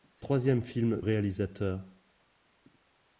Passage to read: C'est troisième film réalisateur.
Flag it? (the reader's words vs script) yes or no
no